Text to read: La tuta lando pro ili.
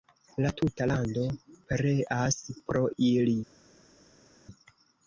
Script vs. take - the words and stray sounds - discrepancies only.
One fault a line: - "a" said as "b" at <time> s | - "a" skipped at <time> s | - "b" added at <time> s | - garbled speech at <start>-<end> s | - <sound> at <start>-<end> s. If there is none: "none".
- "pereas" added at 1.7 s